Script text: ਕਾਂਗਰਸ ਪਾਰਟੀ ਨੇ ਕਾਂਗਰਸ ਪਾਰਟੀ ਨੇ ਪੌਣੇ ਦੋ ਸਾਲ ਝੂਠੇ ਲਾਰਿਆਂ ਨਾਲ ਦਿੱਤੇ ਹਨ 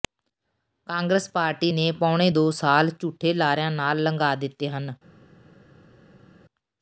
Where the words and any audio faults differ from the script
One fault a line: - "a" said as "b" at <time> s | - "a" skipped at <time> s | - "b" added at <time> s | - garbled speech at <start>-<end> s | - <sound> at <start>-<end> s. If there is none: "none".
- "ਕਾਂਗਰਸ ਪਾਰਟੀ ਨੇ" skipped at 1.9 s
- "ਲੰਘਾ" added at 4.0 s